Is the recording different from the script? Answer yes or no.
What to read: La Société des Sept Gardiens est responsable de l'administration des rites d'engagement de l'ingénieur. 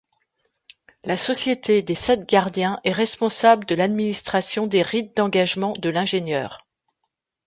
no